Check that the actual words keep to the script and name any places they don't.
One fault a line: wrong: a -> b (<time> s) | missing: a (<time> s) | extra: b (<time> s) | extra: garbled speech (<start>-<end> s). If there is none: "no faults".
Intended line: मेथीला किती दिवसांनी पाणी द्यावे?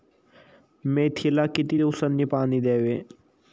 no faults